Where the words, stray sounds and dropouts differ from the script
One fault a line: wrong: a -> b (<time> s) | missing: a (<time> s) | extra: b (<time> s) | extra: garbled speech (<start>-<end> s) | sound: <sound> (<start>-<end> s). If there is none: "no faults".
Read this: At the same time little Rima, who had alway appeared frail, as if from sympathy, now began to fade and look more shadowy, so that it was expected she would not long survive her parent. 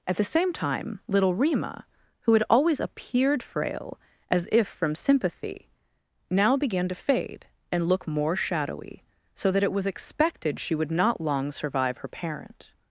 wrong: alway -> always (2.5 s)